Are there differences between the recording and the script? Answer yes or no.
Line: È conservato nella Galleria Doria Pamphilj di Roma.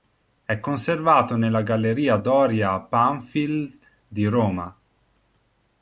no